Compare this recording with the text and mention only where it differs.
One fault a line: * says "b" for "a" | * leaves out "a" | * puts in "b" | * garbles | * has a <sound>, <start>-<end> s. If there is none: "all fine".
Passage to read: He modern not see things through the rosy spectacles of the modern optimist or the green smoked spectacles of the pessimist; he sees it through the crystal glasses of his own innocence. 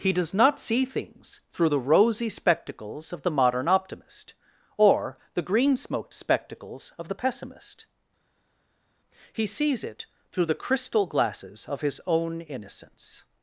* says "does" for "modern"